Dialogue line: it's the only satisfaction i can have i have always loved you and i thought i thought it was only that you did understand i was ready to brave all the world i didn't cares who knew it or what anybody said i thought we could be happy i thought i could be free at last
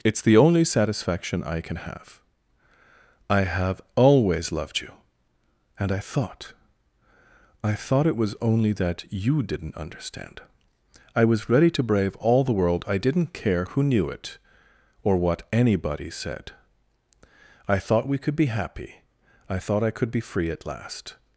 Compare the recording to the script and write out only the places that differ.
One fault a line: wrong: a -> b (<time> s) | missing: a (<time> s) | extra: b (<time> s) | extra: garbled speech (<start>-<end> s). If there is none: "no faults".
wrong: did -> didn't (9.4 s)
wrong: cares -> care (13.3 s)